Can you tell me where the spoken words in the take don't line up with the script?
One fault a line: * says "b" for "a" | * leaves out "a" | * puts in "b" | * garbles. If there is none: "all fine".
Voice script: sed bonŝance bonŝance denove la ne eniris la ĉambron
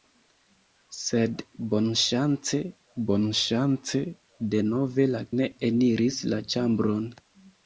all fine